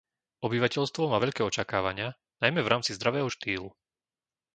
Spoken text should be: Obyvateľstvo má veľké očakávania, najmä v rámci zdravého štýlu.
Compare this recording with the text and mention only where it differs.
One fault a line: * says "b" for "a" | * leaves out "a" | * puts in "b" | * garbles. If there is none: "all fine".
all fine